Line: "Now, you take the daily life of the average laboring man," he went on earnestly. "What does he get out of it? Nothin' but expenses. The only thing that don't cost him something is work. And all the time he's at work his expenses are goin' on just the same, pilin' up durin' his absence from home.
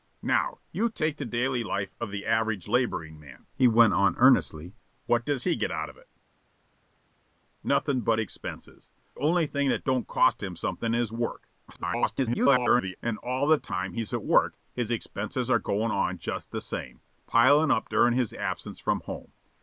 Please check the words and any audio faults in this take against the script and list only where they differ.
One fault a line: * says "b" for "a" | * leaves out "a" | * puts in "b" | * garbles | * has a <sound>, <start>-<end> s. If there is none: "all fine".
* leaves out "The"
* garbles